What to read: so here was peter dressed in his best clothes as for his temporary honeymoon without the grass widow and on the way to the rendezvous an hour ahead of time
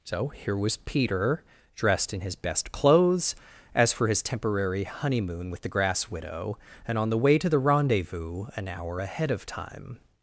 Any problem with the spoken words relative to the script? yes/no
yes